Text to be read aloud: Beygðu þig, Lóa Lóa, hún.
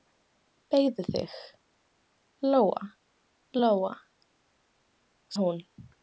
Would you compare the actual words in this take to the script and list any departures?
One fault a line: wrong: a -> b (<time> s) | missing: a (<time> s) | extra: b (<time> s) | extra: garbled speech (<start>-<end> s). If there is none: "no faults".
no faults